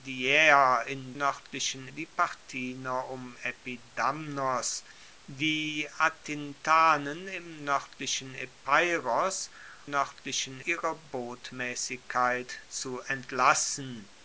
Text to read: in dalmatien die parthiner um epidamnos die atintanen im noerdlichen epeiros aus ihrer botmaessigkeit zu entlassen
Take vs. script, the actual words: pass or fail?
fail